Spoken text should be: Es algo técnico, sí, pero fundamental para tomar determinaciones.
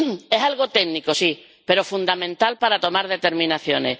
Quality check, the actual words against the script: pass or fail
pass